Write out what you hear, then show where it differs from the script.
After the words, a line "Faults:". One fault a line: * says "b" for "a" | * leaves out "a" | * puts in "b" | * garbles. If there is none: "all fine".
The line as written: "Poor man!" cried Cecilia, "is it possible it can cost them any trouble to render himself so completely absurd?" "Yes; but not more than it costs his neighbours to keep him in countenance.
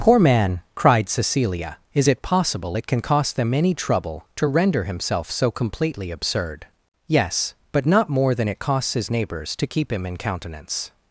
"Poor man!" cried Cecilia, "is it possible it can cost them any trouble to render himself so completely absurd?" "Yes; but not more than it costs his neighbours to keep him in countenance.
Faults:
all fine